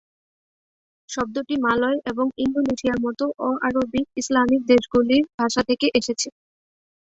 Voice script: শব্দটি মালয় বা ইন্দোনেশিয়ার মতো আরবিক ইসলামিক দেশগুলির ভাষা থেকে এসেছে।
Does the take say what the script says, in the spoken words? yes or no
no